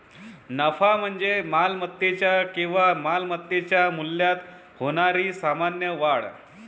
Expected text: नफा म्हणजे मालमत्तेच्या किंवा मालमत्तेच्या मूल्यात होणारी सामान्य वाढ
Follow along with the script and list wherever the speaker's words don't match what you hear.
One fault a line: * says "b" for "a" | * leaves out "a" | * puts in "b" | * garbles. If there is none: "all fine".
all fine